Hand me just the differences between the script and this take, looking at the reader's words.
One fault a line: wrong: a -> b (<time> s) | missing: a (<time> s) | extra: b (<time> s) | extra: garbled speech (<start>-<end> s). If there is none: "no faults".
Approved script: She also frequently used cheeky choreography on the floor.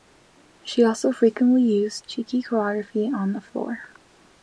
no faults